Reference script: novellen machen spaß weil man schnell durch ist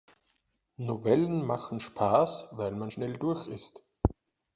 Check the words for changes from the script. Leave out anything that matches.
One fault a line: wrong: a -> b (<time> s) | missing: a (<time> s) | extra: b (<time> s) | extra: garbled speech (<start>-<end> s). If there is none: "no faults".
no faults